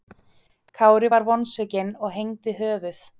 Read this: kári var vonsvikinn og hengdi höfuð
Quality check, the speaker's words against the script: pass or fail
pass